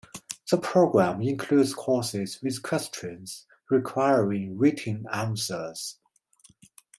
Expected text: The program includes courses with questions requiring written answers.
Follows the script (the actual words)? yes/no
yes